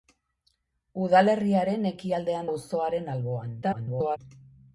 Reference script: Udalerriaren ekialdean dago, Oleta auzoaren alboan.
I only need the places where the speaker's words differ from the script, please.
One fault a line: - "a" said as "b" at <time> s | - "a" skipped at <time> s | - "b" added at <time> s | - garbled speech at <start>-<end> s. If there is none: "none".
- "dago Oleta" skipped at 2.5 s
- garbled speech at 3.6-4.2 s